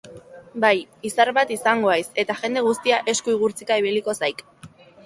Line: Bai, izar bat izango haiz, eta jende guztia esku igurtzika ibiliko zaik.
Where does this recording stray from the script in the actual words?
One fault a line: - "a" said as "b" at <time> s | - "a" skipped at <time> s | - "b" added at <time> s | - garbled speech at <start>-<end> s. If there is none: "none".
none